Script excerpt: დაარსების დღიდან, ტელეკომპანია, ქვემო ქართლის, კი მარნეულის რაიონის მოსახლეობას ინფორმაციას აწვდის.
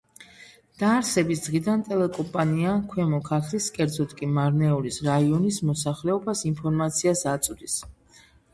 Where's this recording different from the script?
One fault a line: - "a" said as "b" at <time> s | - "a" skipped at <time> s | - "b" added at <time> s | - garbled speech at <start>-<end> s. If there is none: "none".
- "კერძოდ" added at 3.8 s